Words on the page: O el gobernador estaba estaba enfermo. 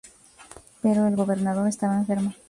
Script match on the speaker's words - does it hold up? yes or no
no